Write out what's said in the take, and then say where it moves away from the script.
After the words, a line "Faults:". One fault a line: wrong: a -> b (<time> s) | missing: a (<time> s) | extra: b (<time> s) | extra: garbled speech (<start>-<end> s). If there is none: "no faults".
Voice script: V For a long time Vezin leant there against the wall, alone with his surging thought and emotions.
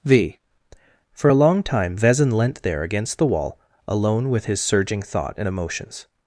V For a long time Vezin leant there against the wall, alone with his surging thought and emotions.
Faults:
no faults